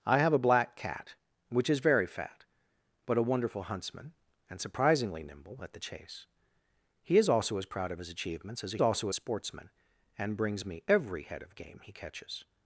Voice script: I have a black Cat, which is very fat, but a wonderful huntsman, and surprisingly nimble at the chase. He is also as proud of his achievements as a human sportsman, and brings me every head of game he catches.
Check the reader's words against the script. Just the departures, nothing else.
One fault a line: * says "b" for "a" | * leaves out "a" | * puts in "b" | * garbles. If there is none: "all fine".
* says "also" for "human"